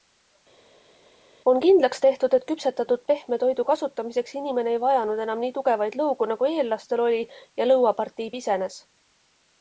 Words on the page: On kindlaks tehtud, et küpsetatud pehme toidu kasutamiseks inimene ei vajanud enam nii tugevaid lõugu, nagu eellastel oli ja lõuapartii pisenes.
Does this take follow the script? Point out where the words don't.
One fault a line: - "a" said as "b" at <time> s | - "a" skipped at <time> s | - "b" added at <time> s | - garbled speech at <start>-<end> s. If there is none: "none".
none